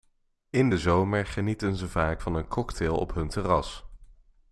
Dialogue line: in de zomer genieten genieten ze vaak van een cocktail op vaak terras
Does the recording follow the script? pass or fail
fail